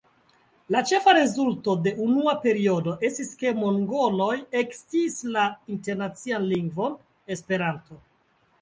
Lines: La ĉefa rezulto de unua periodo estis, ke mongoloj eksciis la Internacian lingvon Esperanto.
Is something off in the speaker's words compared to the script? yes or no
no